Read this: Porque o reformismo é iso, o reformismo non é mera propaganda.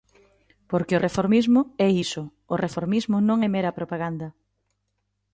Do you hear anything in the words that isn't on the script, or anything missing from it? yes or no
no